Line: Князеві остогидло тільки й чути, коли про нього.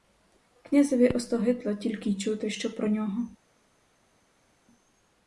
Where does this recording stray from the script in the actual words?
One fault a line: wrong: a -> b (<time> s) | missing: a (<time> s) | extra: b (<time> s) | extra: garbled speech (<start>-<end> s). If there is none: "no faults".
wrong: коли -> що (2.5 s)